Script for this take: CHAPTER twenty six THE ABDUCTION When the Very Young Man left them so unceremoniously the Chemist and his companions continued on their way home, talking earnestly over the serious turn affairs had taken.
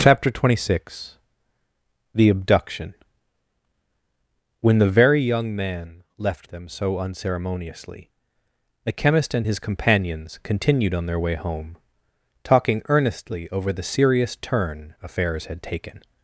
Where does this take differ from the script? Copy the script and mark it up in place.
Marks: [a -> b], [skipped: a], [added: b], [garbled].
CHAPTER twenty six THE ABDUCTION When the Very Young Man left them so unceremoniously the Chemist and his companions continued on their way home, talking earnestly over the serious turn affairs had taken.